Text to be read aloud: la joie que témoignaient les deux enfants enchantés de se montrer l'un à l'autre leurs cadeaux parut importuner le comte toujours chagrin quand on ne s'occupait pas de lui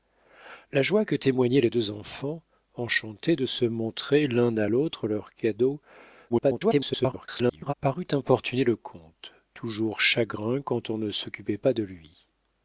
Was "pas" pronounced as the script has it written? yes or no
yes